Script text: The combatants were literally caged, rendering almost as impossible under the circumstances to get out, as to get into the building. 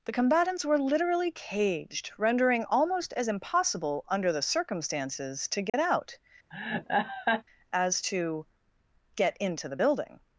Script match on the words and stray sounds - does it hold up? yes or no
no